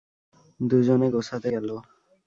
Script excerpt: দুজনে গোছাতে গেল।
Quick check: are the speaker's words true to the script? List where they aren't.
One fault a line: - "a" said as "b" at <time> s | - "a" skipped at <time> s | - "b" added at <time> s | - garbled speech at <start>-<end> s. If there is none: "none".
none